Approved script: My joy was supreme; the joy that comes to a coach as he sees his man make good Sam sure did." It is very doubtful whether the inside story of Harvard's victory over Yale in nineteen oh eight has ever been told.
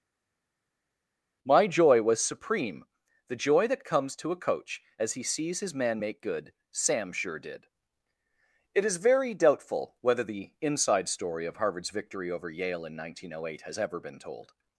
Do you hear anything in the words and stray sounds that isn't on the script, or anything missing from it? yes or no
no